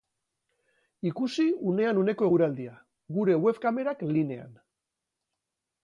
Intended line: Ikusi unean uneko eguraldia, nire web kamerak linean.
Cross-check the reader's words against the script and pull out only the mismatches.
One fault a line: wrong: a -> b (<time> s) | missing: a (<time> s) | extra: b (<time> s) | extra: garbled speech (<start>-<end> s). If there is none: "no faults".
wrong: nire -> gure (3.2 s)